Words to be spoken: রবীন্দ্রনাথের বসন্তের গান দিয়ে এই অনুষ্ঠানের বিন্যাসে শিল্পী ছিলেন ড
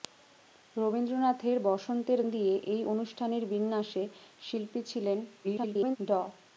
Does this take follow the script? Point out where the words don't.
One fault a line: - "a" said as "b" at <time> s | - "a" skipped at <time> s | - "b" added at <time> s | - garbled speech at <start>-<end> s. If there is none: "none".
- "গান" skipped at 2.2 s
- garbled speech at 5.4-6.0 s